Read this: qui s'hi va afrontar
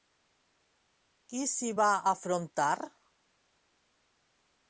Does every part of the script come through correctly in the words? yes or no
yes